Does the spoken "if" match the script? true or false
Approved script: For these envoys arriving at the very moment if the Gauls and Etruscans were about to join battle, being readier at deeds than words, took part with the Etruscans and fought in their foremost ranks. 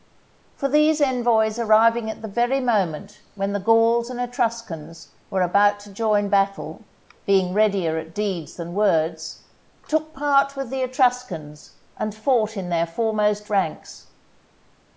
false